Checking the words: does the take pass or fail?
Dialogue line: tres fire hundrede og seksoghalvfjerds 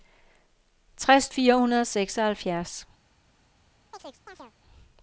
pass